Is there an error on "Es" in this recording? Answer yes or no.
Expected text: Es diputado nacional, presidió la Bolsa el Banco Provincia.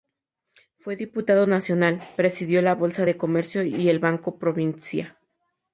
yes